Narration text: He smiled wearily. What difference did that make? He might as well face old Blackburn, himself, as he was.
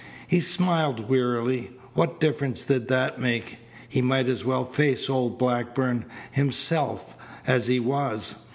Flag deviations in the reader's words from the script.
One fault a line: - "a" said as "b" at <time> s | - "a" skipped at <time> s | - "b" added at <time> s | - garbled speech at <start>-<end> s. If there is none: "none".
none